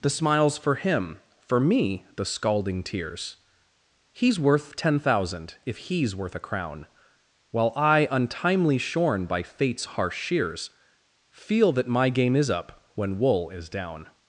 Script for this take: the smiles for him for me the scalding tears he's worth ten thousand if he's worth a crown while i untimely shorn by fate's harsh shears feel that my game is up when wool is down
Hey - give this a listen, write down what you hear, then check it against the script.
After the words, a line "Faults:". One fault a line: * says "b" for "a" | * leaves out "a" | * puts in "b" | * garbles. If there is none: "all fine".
the smiles for him for me the scalding tears he's worth ten thousand if he's worth a crown while i untimely shorn by fate's harsh shears feel that my game is up when wool is down
Faults:
all fine